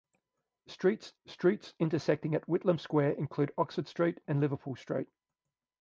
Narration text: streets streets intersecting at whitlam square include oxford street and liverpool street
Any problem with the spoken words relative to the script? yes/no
no